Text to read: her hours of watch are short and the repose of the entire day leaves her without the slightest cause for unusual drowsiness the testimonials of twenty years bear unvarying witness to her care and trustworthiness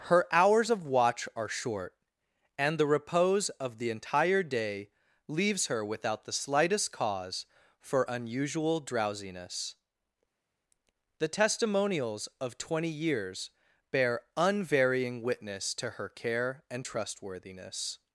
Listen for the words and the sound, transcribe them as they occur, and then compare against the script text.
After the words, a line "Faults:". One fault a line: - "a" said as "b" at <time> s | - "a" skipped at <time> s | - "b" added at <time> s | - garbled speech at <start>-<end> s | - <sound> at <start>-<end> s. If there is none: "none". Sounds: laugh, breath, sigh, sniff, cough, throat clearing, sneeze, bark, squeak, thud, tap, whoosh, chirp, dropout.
her hours of watch are short and the repose of the entire day leaves her without the slightest cause for unusual drowsiness the testimonials of twenty years bear unvarying witness to her care and trustworthiness
Faults:
none